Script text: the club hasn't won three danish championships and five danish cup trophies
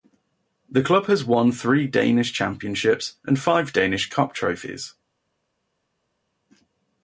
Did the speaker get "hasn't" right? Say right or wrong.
wrong